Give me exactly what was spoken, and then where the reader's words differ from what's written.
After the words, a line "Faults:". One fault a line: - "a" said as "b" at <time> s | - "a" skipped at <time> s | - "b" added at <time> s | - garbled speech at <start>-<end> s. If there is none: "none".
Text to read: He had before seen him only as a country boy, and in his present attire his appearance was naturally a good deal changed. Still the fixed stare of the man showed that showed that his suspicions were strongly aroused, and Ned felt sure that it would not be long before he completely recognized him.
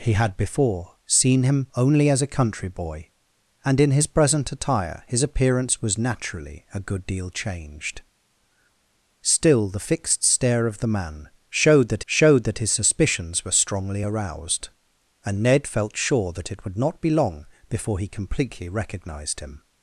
He had before seen him only as a country boy, and in his present attire his appearance was naturally a good deal changed. Still the fixed stare of the man showed that showed that his suspicions were strongly aroused, and Ned felt sure that it would not be long before he completely recognized him.
Faults:
none